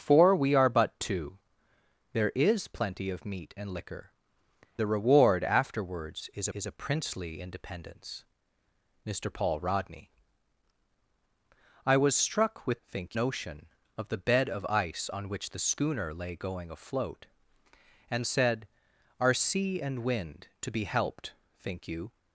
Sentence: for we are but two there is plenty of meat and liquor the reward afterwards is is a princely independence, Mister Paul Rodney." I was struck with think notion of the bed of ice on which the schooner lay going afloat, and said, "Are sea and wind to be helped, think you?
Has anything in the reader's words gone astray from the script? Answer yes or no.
no